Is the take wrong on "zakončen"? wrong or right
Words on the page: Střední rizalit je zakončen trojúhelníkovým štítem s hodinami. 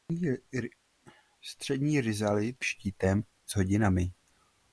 wrong